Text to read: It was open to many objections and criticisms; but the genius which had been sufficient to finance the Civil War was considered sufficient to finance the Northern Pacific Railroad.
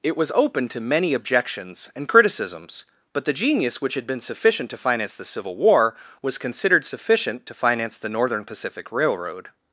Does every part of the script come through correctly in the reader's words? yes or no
yes